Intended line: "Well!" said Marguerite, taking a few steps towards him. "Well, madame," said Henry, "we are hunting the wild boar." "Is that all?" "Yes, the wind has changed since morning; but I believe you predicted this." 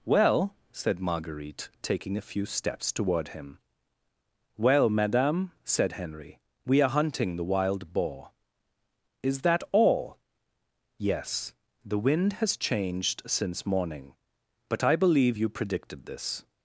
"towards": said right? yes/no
no